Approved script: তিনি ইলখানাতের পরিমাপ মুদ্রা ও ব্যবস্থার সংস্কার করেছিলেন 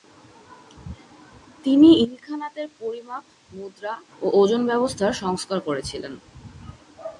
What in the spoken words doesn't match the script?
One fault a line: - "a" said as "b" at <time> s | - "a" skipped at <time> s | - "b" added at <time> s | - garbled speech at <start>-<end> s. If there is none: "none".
- "ওজন" added at 4.4 s